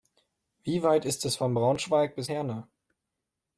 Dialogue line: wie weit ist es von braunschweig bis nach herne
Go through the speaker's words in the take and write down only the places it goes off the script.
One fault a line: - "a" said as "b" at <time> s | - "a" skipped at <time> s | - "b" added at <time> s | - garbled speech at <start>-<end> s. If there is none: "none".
- "nach" skipped at 2.3 s